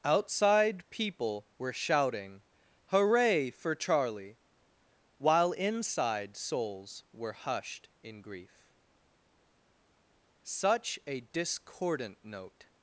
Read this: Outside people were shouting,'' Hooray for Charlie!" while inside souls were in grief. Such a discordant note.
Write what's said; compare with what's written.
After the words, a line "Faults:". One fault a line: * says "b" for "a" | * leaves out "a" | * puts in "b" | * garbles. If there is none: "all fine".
Outside people were shouting,'' Hooray for Charlie!" while inside souls were hushed in grief. Such a discordant note.
Faults:
* puts in "hushed"